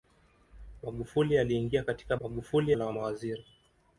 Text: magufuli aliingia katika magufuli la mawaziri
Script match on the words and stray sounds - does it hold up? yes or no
yes